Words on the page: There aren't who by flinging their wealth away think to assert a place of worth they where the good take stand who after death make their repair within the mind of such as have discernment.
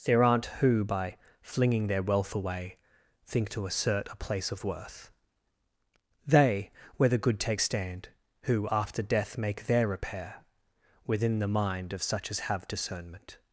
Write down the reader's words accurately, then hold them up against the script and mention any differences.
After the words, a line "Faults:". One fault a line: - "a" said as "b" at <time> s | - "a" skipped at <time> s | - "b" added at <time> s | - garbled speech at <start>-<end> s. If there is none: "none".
There aren't who by flinging their wealth away think to assert a place of worth they where the good take stand who after death make their repair within the mind of such as have discernment.
Faults:
none